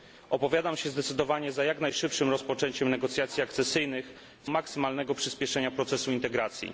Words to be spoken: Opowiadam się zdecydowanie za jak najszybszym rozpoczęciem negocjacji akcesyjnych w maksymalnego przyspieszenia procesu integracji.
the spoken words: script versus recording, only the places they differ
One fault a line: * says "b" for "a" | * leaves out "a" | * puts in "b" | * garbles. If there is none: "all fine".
all fine